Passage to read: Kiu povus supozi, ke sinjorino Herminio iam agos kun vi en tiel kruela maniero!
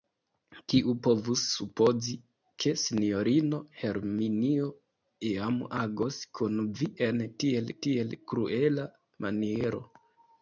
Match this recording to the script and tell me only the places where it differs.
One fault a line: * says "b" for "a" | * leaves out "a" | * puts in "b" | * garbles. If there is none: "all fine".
* puts in "tiel"